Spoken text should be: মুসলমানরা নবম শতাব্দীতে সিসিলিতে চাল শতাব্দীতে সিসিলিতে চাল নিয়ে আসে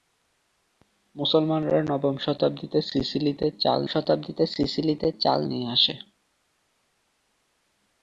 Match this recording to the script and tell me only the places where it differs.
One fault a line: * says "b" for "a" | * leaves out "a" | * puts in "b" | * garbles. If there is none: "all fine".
all fine